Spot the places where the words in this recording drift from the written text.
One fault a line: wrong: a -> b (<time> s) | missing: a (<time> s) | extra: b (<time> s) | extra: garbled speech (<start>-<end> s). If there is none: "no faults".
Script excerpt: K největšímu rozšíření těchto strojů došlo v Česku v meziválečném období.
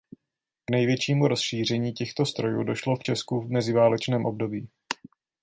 no faults